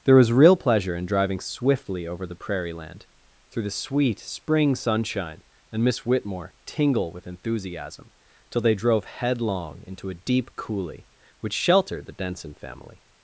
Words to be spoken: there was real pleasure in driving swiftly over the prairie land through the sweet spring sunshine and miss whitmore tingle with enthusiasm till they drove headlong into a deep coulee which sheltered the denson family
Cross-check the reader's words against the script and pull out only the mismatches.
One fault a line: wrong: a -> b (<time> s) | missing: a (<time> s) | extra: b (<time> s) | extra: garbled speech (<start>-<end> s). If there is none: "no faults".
no faults